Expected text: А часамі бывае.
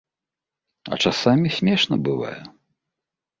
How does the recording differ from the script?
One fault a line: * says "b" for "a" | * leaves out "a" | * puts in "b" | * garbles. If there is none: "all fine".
* puts in "смешна"